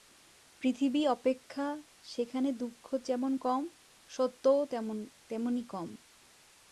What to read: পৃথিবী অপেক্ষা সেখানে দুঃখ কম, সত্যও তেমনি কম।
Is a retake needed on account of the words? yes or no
yes